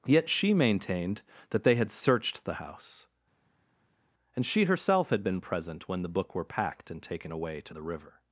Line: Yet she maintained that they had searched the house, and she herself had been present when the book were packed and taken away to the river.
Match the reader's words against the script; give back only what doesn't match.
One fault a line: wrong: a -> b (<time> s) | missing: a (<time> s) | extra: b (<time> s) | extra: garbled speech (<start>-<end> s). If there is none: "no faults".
no faults